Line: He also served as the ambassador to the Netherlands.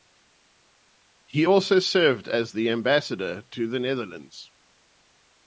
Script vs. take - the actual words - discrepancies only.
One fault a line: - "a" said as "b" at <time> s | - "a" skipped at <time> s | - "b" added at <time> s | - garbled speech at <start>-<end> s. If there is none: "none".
none